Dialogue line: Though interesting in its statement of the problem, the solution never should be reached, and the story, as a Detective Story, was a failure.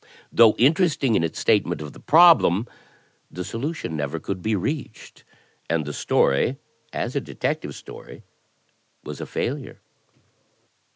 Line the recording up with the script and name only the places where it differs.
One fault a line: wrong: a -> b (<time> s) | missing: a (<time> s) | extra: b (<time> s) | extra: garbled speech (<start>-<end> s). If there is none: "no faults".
wrong: should -> could (4.2 s)